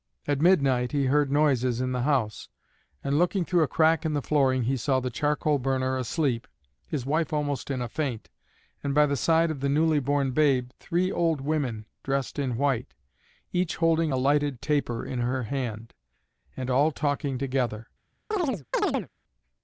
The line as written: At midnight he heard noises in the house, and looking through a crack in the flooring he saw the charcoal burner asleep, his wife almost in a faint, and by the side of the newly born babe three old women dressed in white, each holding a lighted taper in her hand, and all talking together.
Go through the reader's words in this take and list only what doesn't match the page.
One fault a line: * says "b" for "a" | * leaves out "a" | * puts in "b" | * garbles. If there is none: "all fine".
all fine